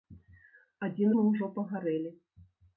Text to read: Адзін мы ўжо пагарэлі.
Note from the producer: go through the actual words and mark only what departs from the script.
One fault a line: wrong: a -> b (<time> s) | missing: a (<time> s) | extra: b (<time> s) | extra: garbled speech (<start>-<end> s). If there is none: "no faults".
no faults